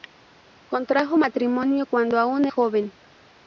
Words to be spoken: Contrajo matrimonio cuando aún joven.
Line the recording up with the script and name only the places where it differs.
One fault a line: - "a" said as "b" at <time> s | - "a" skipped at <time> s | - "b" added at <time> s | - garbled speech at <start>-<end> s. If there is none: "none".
none